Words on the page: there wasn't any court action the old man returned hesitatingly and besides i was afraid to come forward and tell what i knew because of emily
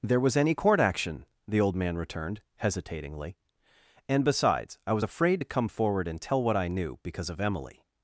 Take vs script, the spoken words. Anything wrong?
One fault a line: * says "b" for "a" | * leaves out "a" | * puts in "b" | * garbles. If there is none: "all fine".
* says "was" for "wasn't"